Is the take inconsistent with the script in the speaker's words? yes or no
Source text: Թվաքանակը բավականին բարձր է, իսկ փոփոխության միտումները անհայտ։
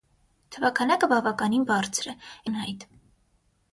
yes